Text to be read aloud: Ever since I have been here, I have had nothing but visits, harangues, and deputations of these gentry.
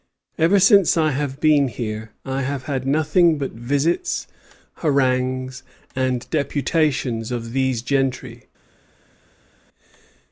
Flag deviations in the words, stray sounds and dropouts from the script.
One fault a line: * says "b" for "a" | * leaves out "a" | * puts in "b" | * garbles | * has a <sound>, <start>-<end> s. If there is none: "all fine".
all fine